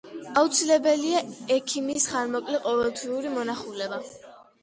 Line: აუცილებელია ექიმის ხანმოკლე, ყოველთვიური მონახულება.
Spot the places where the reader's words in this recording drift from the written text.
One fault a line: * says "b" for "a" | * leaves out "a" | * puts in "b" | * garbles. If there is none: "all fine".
all fine